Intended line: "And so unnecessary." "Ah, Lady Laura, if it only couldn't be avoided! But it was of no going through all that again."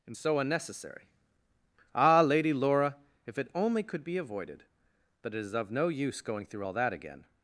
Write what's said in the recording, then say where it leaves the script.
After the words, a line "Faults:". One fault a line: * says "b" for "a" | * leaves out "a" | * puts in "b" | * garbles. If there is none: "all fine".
"And so unnecessary." "Ah, Lady Laura, if it only could be avoided! But it is of no use going through all that again."
Faults:
* says "could" for "couldn't"
* says "is" for "was"
* puts in "use"